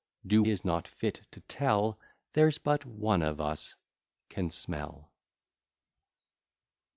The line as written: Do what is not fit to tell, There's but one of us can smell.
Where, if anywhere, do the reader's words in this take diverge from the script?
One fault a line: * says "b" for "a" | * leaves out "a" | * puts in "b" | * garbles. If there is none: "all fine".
* leaves out "what"